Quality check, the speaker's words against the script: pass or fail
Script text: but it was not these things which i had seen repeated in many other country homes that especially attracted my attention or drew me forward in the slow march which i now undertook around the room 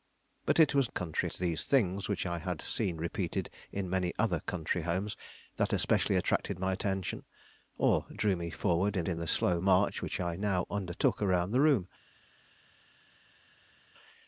fail